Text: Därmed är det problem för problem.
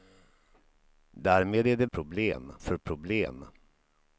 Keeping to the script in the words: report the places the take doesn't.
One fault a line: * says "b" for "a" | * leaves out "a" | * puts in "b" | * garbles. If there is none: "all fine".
all fine